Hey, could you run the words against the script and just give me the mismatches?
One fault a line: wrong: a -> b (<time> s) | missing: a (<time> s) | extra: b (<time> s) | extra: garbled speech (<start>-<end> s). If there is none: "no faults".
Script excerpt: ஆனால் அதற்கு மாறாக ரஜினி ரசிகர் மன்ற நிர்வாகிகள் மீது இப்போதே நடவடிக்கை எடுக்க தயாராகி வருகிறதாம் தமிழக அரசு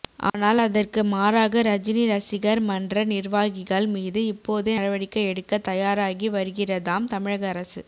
no faults